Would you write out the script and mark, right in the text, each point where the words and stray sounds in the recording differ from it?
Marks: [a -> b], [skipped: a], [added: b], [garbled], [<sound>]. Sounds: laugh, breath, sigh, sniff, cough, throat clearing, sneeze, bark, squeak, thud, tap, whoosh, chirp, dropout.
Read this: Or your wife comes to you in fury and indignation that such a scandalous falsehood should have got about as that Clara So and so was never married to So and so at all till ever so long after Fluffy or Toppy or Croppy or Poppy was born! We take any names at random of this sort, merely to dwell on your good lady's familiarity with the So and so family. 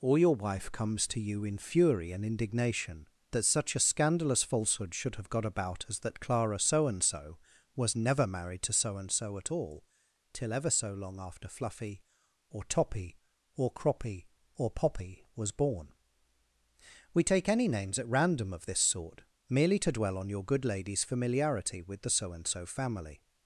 Or your wife comes to you in fury and indignation that such a scandalous falsehood should have got about as that Clara So and so was never married to So and so at all till ever so long after Fluffy or Toppy or Croppy or Poppy was born! We take any names at random of this sort, merely to dwell on your good lady's familiarity with the So and so family.